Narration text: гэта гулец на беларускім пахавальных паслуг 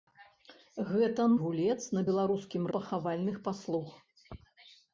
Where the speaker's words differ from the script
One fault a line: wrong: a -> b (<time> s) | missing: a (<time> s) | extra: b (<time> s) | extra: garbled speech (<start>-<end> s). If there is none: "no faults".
no faults